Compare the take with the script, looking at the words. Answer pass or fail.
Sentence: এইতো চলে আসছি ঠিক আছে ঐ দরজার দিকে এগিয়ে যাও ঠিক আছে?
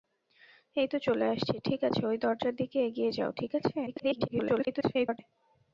fail